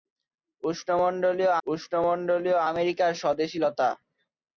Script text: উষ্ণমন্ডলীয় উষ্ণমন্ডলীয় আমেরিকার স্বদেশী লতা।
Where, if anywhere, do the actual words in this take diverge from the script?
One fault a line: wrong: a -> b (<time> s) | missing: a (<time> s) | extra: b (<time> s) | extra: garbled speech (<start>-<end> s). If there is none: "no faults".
no faults